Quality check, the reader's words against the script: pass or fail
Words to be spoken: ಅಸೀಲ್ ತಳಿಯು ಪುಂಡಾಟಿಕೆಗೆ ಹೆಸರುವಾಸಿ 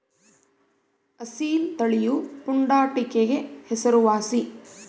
pass